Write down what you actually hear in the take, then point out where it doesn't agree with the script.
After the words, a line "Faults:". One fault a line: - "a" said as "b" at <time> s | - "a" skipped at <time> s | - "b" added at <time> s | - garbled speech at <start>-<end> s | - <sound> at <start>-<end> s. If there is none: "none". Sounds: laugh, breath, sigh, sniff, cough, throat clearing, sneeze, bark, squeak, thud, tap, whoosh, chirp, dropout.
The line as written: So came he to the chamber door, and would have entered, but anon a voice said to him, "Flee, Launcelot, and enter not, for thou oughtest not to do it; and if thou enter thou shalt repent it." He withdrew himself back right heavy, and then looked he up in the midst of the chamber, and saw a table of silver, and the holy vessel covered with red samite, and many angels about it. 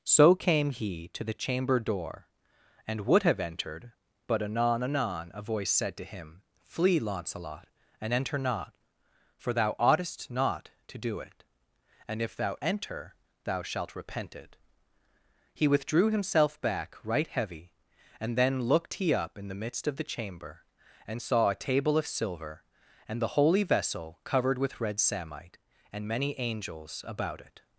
So came he to the chamber door, and would have entered, but anon anon a voice said to him, "Flee, Launcelot, and enter not, for thou oughtest not to do it; and if thou enter thou shalt repent it." He withdrew himself back right heavy, and then looked he up in the midst of the chamber, and saw a table of silver, and the holy vessel covered with red samite, and many angels about it.
Faults:
- "anon" added at 4.8 s